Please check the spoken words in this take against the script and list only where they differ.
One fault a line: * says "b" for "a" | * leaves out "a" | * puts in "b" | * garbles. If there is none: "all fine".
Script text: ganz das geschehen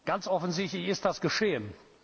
* puts in "offensichtlich ist"